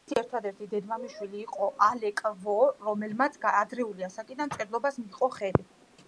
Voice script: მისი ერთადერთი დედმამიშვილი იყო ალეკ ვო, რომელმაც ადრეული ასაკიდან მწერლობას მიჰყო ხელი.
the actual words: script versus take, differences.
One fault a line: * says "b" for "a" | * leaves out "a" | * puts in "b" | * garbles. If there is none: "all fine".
all fine